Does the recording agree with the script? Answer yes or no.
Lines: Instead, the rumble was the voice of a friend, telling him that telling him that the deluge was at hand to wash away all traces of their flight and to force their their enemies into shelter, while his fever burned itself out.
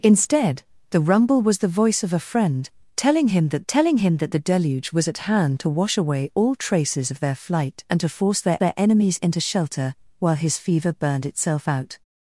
yes